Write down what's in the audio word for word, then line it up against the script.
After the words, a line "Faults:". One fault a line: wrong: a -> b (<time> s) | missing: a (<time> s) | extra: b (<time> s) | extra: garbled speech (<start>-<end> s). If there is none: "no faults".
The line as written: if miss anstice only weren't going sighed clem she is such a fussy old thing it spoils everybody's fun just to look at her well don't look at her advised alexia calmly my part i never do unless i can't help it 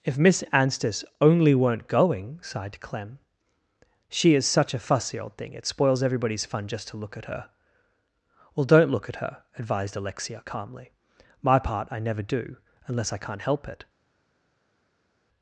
if miss anstice only weren't going sighed clem she is such a fussy old thing it spoils everybody's fun just to look at her well don't look at her advised alexia calmly my part i never do unless i can't help it
Faults:
no faults